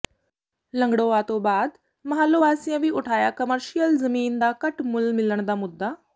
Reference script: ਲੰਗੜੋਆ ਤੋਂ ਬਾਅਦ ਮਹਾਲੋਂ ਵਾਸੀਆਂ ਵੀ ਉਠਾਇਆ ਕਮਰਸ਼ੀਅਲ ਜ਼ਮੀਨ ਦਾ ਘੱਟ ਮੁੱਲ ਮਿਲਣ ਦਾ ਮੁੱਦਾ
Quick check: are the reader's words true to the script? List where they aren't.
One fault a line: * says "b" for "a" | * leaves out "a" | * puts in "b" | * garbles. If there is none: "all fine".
all fine